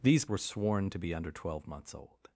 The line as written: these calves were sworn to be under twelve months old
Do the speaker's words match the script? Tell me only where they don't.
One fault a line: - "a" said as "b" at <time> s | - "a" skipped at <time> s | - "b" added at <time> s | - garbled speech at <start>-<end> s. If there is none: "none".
- "calves" skipped at 0.2 s